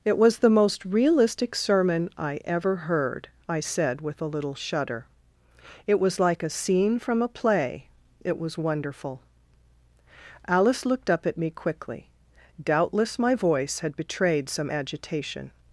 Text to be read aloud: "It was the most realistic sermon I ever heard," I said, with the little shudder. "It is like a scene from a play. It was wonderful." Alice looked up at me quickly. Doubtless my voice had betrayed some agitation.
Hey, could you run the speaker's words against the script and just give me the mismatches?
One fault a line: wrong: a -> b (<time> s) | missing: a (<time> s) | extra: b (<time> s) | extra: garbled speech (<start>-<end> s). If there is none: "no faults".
wrong: the -> a (4.2 s)
wrong: is -> was (6.0 s)